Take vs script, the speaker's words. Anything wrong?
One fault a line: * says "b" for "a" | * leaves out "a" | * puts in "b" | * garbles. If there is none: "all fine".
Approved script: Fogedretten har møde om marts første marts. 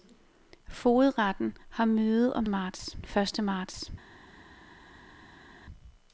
all fine